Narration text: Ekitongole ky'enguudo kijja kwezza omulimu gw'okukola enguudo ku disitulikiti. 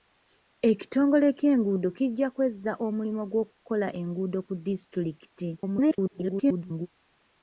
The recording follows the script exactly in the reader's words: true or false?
false